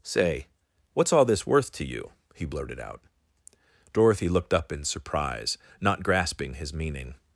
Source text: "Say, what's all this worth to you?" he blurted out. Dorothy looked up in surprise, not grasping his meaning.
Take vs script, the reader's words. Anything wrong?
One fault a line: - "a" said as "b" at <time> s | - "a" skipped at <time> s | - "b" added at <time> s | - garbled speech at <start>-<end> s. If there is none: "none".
none